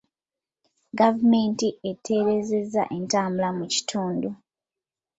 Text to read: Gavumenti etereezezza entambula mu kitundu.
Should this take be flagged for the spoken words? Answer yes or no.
no